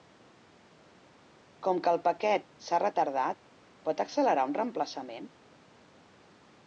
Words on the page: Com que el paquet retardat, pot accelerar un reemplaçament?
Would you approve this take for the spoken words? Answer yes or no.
no